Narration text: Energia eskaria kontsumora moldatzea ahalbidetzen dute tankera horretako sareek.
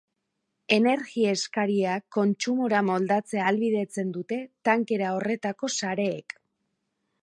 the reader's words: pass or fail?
pass